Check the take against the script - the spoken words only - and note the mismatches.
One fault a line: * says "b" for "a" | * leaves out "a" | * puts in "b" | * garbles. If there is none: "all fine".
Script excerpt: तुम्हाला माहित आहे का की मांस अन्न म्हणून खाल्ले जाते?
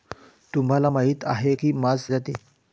* leaves out "का"
* leaves out "अन्न म्हणून खाल्ले"